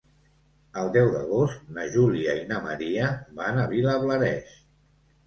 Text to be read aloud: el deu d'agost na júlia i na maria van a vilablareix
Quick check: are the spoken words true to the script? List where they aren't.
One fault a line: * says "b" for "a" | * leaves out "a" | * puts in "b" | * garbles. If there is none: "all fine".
all fine